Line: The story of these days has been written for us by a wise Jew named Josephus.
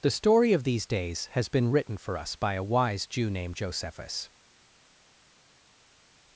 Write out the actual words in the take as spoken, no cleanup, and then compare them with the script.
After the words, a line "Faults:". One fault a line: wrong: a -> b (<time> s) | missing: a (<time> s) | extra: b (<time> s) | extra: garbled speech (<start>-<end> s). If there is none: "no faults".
The story of these days has been written for us by a wise Jew named Josephus.
Faults:
no faults